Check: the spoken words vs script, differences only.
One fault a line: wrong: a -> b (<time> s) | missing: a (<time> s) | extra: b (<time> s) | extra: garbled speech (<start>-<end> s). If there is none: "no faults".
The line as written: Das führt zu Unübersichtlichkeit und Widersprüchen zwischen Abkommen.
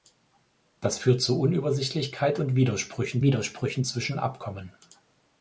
extra: Widersprüchen (3.2 s)